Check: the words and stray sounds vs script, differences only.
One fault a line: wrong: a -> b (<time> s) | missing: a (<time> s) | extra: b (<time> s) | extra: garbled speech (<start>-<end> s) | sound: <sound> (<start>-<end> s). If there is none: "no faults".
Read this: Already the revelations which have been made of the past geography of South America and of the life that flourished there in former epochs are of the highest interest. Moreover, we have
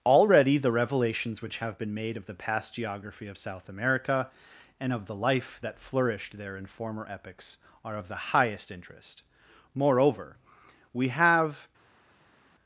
no faults